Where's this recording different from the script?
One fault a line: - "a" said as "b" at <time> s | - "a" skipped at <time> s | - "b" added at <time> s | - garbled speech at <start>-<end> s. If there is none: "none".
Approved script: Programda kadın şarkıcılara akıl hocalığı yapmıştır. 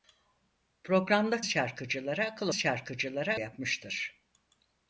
- "kadın" skipped at 1.4 s
- "hocalığı" said as "şarkıcılara" at 2.5 s